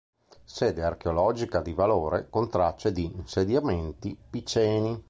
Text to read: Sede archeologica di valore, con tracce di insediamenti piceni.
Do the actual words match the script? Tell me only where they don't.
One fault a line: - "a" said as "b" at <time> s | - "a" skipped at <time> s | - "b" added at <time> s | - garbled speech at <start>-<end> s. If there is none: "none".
none